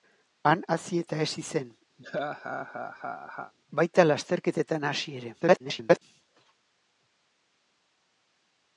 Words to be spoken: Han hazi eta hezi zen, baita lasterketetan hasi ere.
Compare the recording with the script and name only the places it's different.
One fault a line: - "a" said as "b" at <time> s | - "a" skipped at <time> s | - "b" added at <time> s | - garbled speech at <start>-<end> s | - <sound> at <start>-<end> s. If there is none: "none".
- laugh at 2.0-3.5 s
- garbled speech at 5.4-6.0 s